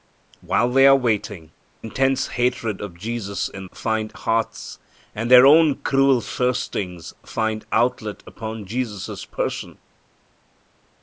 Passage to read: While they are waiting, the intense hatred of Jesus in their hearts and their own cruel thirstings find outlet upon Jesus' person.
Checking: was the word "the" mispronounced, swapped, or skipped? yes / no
yes